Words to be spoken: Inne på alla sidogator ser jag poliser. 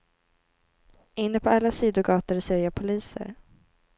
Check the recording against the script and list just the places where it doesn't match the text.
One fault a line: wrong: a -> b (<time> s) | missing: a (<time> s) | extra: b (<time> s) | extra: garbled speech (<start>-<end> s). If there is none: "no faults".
no faults